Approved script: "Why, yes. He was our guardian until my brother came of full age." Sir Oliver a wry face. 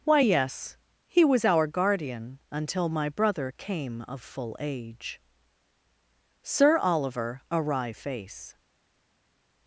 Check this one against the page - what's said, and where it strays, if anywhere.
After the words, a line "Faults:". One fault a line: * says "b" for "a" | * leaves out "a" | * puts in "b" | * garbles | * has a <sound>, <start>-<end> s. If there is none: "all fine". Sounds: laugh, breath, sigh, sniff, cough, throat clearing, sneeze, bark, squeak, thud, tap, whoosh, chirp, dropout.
"Why, yes. He was our guardian until my brother came of full age." Sir Oliver a wry face.
Faults:
all fine